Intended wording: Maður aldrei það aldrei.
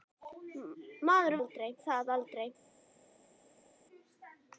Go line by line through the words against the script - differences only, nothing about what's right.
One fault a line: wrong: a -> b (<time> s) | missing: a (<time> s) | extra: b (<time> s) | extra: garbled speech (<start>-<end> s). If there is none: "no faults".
no faults